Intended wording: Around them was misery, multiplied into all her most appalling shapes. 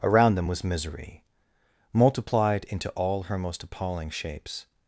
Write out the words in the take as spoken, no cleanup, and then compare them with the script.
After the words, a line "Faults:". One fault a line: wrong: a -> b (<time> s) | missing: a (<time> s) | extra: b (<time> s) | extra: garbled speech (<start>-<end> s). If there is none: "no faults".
Around them was misery, multiplied into all her most appalling shapes.
Faults:
no faults